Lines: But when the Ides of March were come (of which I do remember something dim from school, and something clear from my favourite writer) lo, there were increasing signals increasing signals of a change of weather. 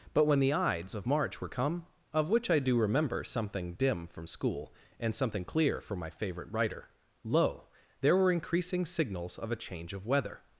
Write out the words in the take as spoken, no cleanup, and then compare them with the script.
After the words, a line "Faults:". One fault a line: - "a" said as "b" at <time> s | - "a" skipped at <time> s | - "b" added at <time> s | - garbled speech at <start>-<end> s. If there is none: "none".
But when the Ides of March were come (of which I do remember something dim from school, and something clear from my favourite writer) lo, there were increasing signals of a change of weather.
Faults:
- "increasing signals" skipped at 9.4 s